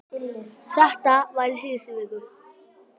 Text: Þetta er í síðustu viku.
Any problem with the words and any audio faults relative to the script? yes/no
yes